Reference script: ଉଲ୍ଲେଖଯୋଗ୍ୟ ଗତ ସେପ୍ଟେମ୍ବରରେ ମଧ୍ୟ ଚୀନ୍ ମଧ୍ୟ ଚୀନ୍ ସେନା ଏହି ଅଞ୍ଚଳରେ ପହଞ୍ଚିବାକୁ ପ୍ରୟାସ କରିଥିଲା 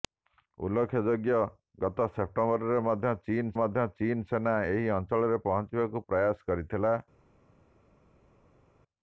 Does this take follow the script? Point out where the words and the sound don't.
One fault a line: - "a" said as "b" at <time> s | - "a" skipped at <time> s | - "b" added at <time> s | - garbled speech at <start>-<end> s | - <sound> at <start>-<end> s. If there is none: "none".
none